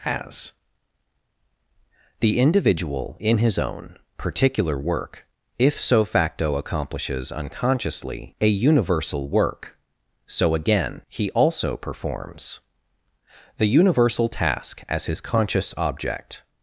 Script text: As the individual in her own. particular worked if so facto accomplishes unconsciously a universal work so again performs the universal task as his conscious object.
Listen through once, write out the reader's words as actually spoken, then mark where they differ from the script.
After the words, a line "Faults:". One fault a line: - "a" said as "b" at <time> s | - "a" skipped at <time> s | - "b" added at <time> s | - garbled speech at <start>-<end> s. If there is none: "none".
As the individual in his own. particular work if so facto accomplishes unconsciously a universal work so again he also performs the universal task as his conscious object.
Faults:
- "her" said as "his" at 3.4 s
- "worked" said as "work" at 4.8 s
- "he also" added at 11.1 s